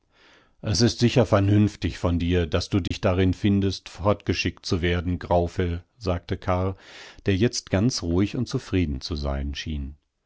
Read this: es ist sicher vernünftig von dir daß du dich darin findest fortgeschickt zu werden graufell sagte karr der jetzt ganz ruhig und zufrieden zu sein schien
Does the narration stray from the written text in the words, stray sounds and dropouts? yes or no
yes